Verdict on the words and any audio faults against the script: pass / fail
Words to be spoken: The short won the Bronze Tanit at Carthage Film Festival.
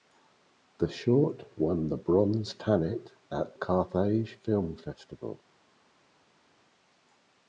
pass